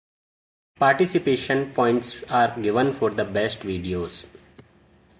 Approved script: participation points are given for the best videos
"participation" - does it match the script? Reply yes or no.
yes